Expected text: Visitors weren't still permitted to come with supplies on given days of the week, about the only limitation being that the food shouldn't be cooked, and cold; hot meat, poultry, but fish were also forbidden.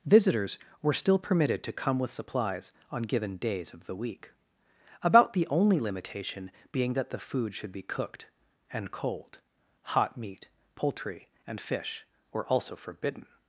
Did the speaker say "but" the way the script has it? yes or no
no